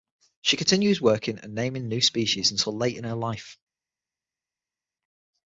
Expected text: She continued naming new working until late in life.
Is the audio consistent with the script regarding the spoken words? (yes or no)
no